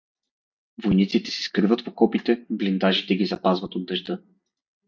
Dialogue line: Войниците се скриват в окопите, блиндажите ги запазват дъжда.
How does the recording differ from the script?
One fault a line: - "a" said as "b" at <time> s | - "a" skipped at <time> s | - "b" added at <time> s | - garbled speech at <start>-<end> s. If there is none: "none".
- "от" added at 3.7 s